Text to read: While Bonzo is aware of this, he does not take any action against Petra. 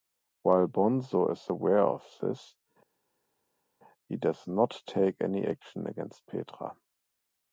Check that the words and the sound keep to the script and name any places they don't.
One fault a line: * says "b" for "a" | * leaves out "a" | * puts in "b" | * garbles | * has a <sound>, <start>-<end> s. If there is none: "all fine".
all fine